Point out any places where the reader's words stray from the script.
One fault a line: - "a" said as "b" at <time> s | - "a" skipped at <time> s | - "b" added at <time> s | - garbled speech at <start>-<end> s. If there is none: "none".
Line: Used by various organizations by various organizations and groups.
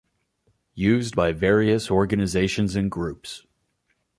- "by various organizations" skipped at 2.8 s